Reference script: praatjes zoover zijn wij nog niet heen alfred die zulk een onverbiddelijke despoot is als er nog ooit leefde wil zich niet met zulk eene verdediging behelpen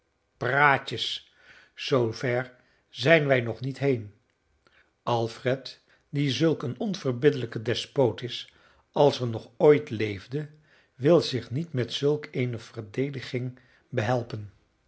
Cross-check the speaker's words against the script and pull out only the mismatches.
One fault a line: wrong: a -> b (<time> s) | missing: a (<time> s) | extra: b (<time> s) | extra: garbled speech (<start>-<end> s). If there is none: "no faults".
no faults